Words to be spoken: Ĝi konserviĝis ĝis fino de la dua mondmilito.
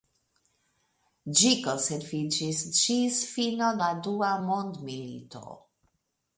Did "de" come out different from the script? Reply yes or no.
yes